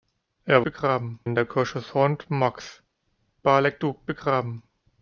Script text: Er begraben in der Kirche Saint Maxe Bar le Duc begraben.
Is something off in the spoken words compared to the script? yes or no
no